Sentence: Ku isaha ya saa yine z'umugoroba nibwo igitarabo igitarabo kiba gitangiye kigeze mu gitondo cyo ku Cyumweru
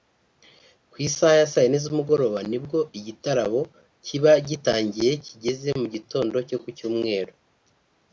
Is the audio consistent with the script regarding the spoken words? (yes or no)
no